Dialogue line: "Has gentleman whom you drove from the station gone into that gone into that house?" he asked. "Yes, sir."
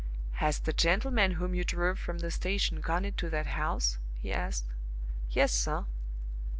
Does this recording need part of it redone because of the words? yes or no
yes